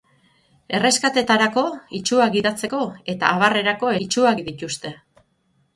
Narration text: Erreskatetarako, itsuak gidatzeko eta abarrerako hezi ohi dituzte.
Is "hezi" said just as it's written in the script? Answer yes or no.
no